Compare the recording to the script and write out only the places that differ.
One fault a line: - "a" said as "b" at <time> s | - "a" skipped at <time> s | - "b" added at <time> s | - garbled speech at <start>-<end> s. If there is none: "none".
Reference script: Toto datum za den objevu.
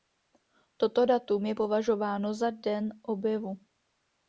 - "je považováno" added at 1.4 s